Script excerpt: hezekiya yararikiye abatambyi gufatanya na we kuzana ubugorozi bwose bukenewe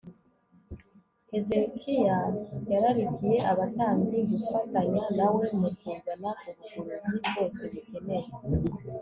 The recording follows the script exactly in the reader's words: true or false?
false